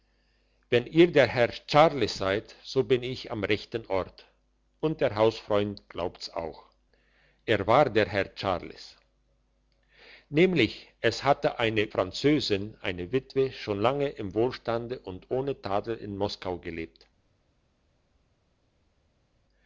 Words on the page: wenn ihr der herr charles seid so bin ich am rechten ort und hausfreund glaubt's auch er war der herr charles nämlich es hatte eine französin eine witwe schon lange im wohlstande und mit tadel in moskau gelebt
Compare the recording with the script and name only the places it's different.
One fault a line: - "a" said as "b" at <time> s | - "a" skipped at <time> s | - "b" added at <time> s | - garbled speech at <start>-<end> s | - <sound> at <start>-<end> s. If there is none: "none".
- "der" added at 5.0 s
- "mit" said as "ohne" at 15.3 s